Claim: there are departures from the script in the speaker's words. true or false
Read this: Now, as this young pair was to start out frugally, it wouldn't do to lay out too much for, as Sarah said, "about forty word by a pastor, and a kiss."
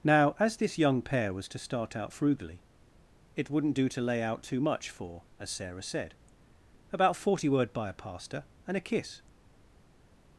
false